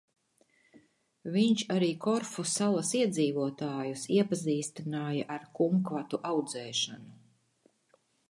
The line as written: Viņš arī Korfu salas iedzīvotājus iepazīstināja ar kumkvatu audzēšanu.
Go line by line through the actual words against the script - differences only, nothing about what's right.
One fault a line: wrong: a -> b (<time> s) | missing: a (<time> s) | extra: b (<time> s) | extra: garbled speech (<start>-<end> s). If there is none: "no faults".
no faults